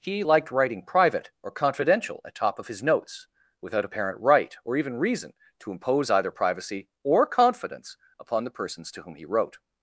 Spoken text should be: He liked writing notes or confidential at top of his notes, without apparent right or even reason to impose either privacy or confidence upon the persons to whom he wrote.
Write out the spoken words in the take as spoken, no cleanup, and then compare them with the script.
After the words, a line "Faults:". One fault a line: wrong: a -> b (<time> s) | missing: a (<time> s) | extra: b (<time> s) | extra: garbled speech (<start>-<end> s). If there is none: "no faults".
He liked writing private or confidential at top of his notes, without apparent right or even reason to impose either privacy or confidence upon the persons to whom he wrote.
Faults:
wrong: notes -> private (0.8 s)